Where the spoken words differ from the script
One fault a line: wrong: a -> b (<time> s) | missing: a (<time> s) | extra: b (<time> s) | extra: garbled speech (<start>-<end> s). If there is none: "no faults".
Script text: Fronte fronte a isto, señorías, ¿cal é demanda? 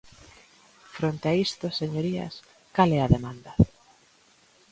missing: fronte (1.2 s)
extra: a (3.0 s)